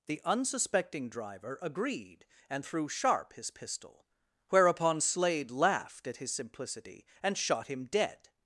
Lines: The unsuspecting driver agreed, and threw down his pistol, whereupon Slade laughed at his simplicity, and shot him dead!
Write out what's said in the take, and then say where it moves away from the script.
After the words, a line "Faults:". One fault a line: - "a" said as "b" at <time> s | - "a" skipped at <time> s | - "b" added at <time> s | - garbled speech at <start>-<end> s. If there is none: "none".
The unsuspecting driver agreed, and threw sharp his pistol, whereupon Slade laughed at his simplicity, and shot him dead!
Faults:
- "down" said as "sharp" at 2.9 s